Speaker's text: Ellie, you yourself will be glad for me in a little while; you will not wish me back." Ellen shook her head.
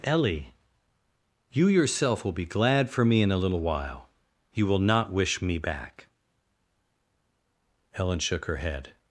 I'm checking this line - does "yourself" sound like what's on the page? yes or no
yes